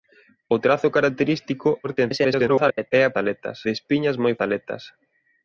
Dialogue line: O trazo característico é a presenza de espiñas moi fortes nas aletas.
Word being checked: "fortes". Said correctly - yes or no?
no